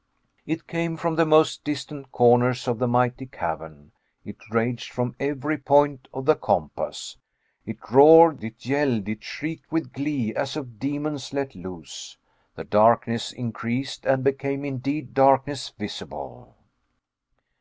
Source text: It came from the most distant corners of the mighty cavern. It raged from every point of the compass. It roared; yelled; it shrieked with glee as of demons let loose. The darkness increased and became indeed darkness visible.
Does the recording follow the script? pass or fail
fail